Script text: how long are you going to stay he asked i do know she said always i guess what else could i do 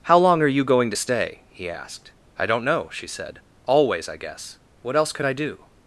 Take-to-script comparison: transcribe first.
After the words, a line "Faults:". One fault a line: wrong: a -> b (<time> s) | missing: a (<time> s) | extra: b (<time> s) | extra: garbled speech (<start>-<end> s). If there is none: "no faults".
how long are you going to stay he asked i don't know she said always i guess what else could i do
Faults:
wrong: do -> don't (2.5 s)